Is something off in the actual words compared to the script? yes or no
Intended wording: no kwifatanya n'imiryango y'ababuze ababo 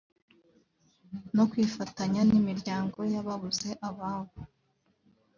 no